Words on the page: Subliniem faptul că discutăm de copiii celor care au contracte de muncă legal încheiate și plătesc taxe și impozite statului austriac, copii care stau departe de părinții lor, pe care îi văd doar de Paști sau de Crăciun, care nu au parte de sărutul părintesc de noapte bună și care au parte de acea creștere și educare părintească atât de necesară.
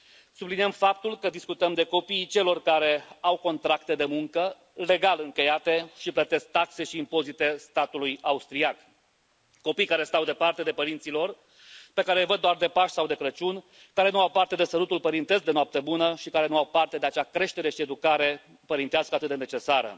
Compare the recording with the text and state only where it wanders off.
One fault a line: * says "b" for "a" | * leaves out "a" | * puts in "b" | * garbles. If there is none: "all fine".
* puts in "nu"